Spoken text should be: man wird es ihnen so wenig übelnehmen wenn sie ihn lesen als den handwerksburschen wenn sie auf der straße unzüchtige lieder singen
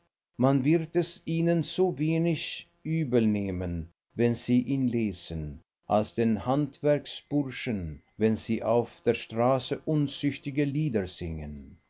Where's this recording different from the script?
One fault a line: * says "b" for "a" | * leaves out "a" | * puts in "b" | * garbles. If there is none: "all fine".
all fine